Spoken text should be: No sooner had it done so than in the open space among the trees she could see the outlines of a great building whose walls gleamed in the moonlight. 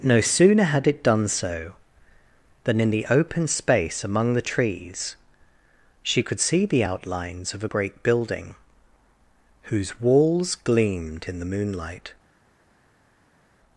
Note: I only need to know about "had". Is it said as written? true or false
true